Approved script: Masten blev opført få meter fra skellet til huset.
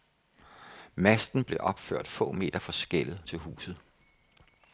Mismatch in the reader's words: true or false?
false